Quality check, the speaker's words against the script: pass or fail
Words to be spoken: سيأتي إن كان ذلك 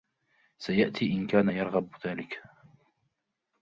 fail